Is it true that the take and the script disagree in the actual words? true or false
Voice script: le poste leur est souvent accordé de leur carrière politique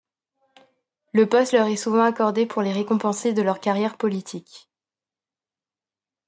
true